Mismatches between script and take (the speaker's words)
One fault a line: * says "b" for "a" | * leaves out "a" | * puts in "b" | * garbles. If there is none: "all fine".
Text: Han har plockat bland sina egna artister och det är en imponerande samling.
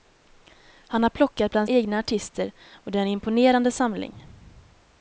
* leaves out "sina"